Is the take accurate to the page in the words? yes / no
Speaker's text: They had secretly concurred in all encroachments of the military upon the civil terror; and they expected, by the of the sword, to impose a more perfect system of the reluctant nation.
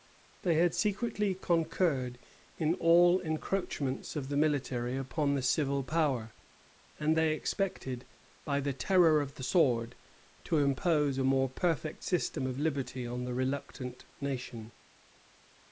no